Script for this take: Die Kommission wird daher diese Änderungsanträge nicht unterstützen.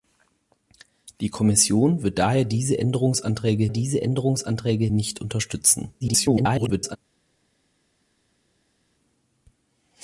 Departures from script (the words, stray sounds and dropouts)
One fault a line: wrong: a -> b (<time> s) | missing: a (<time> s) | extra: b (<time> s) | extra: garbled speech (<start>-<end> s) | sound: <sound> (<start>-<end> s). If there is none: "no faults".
extra: diese Änderungsanträge (3.7 s)
extra: garbled speech (6.0-7.0 s)